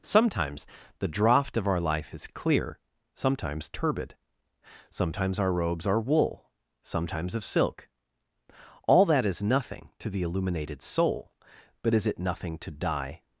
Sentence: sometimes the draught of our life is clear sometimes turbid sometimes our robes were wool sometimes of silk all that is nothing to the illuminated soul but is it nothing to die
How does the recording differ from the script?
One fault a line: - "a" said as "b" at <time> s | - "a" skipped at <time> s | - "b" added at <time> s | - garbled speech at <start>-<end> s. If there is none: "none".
- "were" said as "are" at 5.8 s